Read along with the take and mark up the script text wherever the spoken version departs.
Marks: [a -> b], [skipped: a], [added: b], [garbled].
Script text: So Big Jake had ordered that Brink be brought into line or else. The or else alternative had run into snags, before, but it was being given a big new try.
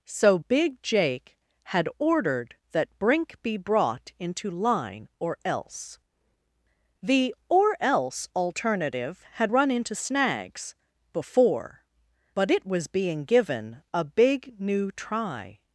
So Big Jake had ordered that Brink be brought into line or else. The or else alternative had run into snags, before, but it was being given a big new try.